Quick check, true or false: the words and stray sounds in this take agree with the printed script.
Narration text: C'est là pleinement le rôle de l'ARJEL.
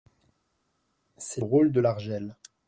false